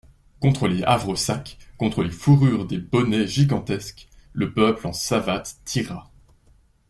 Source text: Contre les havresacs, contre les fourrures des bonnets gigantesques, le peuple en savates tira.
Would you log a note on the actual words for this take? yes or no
no